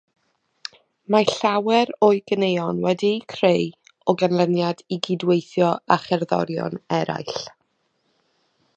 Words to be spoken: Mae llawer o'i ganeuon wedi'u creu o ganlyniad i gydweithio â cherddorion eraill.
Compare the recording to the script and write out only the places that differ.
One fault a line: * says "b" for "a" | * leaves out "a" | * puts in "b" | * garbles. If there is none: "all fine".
all fine